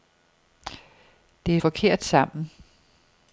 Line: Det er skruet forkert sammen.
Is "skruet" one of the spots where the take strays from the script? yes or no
yes